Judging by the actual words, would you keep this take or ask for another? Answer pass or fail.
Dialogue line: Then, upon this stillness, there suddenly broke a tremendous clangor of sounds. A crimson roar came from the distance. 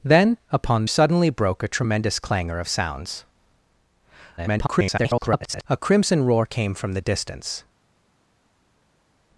fail